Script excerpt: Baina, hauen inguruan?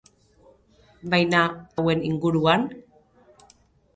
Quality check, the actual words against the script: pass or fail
pass